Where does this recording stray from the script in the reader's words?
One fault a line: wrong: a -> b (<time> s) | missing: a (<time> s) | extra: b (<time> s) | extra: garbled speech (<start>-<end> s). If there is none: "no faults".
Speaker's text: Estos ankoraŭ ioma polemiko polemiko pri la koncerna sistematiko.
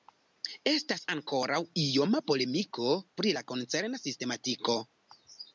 wrong: Estos -> Estas (0.7 s)
missing: polemiko (2.9 s)